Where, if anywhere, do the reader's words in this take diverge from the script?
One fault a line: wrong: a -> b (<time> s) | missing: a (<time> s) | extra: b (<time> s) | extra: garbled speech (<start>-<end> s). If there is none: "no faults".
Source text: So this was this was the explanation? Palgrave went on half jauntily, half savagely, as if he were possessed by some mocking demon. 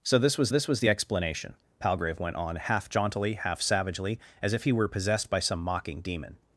no faults